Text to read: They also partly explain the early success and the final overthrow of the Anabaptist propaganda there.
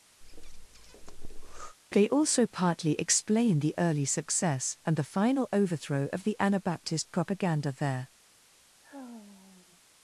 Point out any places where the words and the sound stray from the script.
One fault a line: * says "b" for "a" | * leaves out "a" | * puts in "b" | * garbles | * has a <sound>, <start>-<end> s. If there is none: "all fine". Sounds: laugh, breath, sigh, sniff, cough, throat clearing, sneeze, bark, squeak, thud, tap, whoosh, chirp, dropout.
* has a breath, 0.2-1.8 s
* has a sigh, 8.8-9.8 s